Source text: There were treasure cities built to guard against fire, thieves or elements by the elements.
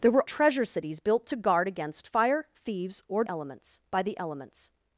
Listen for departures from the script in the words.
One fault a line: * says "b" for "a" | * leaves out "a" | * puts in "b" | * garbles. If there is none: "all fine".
all fine